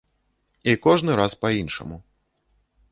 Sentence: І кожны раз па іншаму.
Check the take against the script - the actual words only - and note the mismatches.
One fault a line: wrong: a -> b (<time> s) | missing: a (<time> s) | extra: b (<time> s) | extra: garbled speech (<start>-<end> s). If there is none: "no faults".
no faults